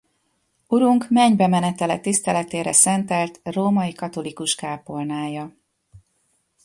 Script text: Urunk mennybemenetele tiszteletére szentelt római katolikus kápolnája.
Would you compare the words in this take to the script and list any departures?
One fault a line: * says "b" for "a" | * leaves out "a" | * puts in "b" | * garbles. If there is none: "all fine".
all fine